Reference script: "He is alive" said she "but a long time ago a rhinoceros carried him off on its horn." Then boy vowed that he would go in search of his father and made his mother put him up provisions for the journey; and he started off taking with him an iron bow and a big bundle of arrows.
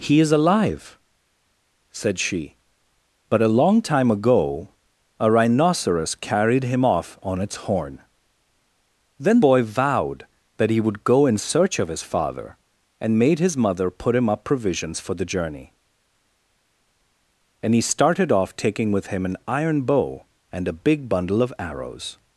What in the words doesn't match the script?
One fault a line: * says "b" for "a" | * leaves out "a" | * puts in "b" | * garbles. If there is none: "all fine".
all fine